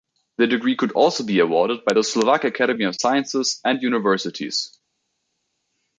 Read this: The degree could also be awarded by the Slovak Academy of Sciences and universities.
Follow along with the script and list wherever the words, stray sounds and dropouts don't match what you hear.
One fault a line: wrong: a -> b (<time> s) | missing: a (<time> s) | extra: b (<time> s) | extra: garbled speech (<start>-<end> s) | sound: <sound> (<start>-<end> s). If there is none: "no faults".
no faults